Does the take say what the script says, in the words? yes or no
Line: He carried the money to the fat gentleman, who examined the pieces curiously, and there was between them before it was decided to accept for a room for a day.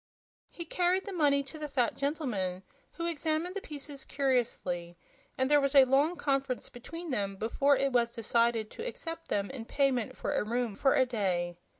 no